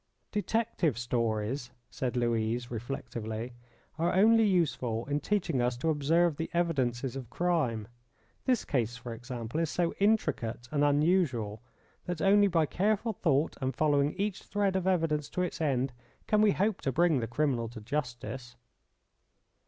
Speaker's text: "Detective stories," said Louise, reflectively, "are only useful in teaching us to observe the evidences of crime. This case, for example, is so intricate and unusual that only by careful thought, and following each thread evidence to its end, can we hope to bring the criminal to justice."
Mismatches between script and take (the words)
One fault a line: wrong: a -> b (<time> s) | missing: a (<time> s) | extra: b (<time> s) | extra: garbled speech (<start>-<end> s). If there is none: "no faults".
extra: of (14.8 s)